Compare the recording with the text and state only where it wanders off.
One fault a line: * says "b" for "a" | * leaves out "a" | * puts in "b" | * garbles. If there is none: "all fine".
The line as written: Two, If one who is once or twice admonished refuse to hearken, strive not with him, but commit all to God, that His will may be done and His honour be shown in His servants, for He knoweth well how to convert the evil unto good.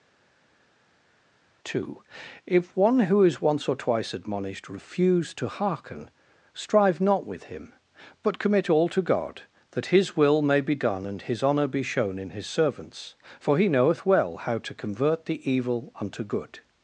all fine